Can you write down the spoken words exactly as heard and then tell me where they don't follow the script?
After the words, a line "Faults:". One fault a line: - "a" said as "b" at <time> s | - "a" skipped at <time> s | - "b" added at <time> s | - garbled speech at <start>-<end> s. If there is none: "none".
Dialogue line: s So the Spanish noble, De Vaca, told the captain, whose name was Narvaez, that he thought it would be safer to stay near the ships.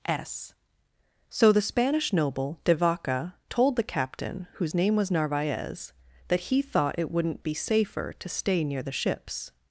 s So the Spanish noble, De Vaca, told the captain, whose name was Narvaez, that he thought it wouldn't be safer to stay near the ships.
Faults:
- "would" said as "wouldn't" at 7.1 s